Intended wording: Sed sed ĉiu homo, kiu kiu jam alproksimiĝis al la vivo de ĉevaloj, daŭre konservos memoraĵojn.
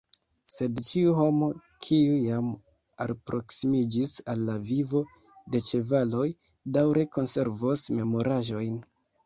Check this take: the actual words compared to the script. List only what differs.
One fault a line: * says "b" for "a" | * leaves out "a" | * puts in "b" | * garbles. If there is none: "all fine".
* leaves out "sed"
* leaves out "kiu"